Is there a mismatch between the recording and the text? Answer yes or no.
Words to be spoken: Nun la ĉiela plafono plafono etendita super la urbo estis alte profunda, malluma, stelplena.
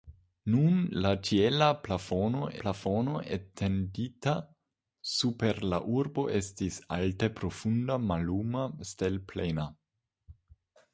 no